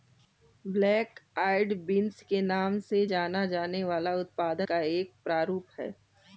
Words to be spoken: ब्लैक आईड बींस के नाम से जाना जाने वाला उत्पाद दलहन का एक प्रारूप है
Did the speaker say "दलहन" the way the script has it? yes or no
no